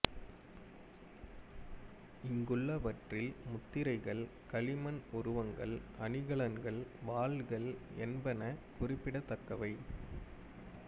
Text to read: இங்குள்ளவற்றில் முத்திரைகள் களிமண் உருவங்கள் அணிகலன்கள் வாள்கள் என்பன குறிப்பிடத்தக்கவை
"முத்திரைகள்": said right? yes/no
yes